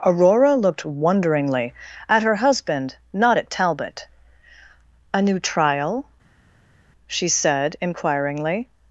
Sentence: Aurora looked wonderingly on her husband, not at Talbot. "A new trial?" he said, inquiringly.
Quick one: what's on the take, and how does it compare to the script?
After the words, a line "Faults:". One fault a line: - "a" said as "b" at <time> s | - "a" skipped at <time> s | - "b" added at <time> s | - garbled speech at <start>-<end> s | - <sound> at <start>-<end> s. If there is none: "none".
Aurora looked wonderingly at her husband, not at Talbot. "A new trial?" she said, inquiringly.
Faults:
- "on" said as "at" at 2.1 s
- "he" said as "she" at 7.1 s